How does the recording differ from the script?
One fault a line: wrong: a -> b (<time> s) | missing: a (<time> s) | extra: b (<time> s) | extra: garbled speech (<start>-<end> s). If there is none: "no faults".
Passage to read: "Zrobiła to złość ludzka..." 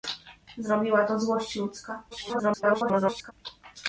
extra: garbled speech (2.1-3.3 s)